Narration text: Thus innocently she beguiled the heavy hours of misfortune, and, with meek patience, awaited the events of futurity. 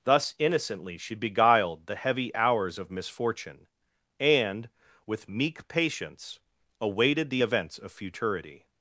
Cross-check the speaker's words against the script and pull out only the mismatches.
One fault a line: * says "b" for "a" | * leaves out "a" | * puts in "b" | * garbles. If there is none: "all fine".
all fine